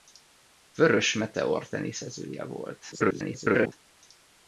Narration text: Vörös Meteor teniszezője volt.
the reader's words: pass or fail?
fail